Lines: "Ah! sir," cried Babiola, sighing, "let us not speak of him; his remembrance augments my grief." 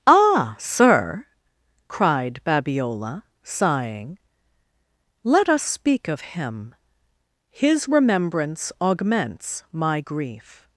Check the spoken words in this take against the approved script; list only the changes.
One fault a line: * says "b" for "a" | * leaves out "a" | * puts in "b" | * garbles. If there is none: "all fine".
* leaves out "not"